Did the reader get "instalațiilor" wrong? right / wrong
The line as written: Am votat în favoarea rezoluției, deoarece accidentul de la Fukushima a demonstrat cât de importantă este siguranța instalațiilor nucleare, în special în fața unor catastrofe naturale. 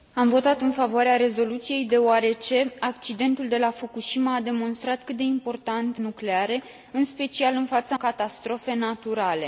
wrong